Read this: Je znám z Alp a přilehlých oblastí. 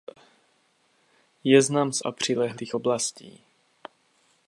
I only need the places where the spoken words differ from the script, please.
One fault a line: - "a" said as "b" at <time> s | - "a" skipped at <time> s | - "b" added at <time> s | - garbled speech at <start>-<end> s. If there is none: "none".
- "Alp" skipped at 2.0 s